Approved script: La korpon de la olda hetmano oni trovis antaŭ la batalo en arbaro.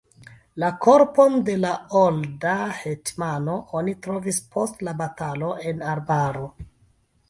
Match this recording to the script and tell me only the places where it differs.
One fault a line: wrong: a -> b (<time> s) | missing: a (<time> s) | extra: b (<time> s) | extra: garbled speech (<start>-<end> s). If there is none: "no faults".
wrong: antaŭ -> post (4.6 s)